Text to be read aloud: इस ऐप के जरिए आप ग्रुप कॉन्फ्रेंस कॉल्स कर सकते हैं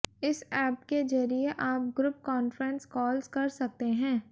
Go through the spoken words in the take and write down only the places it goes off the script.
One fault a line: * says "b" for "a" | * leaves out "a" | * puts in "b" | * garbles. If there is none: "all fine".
all fine